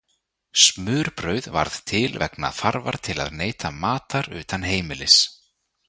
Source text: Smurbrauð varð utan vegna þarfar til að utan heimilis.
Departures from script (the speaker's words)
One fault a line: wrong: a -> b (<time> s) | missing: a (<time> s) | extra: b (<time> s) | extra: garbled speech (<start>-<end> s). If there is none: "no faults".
wrong: utan -> til (1.9 s)
extra: neyta matar (3.4 s)